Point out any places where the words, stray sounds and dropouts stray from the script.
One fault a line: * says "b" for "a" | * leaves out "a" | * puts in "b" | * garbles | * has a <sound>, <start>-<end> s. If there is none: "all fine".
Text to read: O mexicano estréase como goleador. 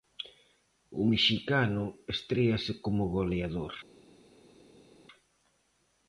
all fine